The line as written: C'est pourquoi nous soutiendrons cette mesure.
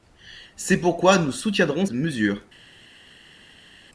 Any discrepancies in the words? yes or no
yes